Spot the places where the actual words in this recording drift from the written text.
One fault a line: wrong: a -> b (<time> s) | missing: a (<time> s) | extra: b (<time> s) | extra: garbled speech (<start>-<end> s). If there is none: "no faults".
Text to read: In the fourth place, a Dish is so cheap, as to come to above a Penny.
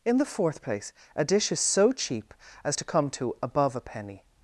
no faults